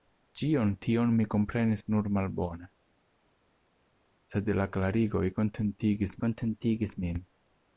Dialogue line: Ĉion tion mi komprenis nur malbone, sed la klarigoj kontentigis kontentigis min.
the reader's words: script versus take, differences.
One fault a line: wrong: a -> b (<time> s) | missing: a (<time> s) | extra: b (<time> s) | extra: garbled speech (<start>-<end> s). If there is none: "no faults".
no faults